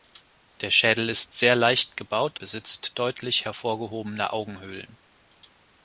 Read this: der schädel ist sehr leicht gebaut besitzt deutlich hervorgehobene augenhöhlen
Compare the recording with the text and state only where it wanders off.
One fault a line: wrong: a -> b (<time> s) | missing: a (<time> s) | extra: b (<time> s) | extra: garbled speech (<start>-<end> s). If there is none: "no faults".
no faults